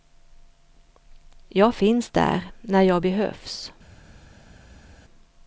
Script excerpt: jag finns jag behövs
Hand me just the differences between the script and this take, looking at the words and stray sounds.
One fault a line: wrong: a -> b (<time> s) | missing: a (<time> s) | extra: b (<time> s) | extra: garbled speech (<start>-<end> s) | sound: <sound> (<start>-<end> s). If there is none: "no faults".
extra: där när (2.1 s)